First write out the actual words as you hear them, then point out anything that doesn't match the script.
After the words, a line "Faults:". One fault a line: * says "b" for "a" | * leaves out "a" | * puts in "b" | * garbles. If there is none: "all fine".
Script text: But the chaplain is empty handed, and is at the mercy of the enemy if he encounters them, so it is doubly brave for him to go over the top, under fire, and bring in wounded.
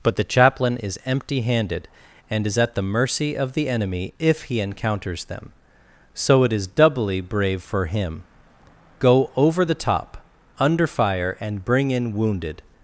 But the chaplain is empty handed, and is at the mercy of the enemy if he encounters them, so it is doubly brave for him go over the top, under fire, and bring in wounded.
Faults:
* leaves out "to"